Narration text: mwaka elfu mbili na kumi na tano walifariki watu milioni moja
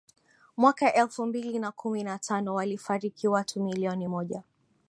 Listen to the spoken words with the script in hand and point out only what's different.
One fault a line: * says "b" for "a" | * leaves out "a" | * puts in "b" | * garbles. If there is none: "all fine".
all fine